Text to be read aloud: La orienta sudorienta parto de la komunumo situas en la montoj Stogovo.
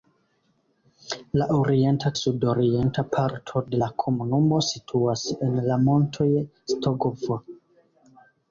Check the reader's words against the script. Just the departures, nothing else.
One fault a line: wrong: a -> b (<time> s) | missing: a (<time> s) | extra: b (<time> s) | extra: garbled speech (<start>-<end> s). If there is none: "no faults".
no faults